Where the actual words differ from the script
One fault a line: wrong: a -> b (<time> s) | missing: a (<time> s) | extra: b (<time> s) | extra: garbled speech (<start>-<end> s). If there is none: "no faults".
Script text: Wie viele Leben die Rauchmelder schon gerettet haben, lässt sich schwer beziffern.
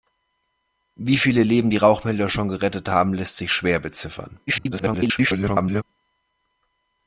extra: garbled speech (4.5-5.8 s)